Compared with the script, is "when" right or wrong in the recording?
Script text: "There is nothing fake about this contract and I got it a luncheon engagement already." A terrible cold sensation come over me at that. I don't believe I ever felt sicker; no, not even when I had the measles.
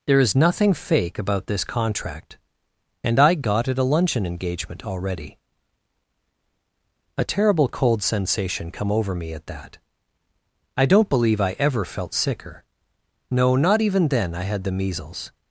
wrong